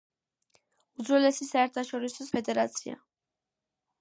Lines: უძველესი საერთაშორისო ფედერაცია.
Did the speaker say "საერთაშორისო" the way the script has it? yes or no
yes